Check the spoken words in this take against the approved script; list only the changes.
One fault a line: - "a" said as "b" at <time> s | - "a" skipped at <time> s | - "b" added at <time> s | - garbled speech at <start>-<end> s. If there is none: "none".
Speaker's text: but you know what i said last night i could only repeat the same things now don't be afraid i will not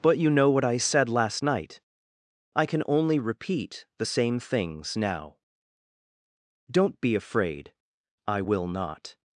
- "could" said as "can" at 2.6 s